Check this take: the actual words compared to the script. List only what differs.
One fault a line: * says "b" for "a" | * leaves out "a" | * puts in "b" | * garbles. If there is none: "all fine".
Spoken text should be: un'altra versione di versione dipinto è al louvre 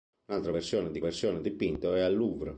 all fine